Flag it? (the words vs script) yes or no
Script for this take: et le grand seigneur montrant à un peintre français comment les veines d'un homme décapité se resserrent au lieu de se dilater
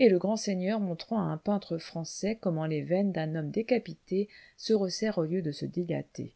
no